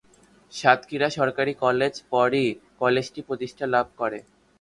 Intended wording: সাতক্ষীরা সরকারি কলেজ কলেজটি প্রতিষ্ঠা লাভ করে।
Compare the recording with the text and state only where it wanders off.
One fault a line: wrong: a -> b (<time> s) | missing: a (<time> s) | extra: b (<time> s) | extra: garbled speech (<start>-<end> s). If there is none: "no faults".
extra: পরই (2.1 s)